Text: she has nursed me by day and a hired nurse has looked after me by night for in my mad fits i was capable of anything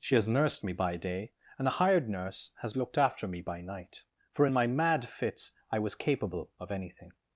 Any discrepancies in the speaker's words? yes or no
no